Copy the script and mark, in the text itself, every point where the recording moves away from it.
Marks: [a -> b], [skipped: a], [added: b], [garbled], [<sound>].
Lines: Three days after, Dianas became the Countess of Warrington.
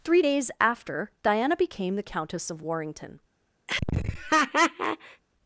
Three days after, [Dianas -> Diana] became the Countess of Warrington. [laugh]